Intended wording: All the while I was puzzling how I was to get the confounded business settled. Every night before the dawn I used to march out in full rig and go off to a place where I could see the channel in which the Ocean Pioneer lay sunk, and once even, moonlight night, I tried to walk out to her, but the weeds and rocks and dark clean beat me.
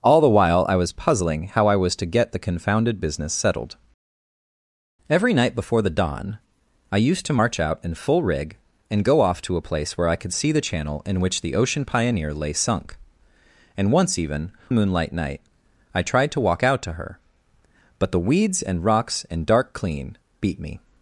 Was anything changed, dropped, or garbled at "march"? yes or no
no